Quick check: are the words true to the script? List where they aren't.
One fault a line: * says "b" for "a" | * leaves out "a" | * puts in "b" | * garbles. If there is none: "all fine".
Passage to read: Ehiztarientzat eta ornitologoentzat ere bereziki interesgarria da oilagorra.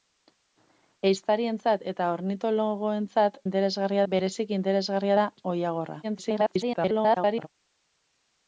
* says "interesgarria" for "ere"
* garbles